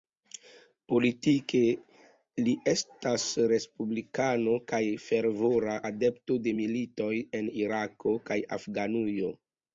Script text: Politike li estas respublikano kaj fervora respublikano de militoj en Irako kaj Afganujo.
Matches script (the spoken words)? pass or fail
fail